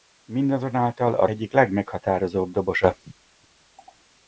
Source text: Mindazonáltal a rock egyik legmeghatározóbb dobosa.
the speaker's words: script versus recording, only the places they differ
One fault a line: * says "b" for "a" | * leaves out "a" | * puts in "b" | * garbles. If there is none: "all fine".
* leaves out "rock"